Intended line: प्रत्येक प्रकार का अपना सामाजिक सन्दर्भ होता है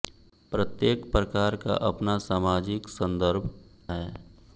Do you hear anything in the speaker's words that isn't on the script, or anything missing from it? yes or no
yes